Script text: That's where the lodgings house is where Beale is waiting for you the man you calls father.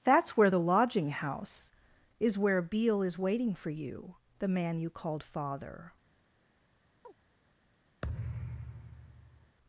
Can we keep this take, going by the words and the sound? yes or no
no